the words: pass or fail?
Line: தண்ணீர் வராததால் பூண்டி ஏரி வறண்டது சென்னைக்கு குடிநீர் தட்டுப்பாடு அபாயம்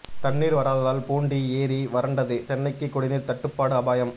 pass